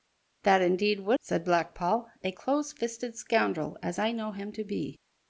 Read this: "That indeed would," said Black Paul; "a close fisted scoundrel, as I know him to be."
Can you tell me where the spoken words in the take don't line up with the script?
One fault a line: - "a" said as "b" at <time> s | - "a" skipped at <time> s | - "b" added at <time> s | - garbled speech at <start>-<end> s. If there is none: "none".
none